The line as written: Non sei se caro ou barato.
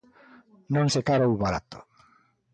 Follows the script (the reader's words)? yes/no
no